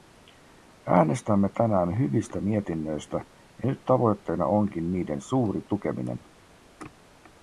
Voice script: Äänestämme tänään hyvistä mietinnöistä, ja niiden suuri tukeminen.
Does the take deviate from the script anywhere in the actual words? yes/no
yes